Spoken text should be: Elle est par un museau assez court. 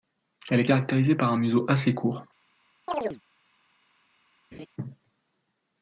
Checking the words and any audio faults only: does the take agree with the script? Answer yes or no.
no